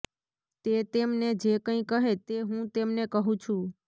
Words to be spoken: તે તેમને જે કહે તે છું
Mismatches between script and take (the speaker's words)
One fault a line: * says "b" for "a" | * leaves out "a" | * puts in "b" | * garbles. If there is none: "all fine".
* puts in "કંઈ"
* puts in "હું તેમને કહું"